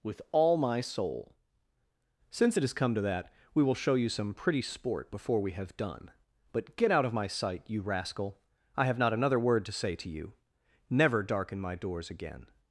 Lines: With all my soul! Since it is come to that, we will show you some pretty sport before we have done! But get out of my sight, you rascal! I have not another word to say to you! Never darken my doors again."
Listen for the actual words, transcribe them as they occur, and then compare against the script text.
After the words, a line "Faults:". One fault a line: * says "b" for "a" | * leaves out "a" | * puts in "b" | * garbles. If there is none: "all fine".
With all my soul! Since it has come to that, we will show you some pretty sport before we have done! But get out of my sight, you rascal! I have not another word to say to you! Never darken my doors again."
Faults:
* says "has" for "is"